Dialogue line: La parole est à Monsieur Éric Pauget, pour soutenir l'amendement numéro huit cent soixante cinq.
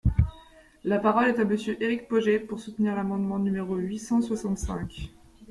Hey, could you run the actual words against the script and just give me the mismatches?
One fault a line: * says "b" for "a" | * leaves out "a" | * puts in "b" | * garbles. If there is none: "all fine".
all fine